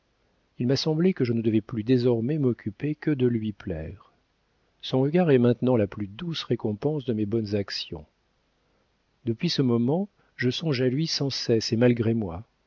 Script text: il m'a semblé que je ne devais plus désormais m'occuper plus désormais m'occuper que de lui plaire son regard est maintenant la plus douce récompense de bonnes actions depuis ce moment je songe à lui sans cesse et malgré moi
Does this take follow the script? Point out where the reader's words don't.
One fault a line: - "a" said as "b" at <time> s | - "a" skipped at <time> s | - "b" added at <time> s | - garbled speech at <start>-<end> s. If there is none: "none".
- "plus désormais m'occuper" skipped at 3.0 s
- "mes" added at 7.1 s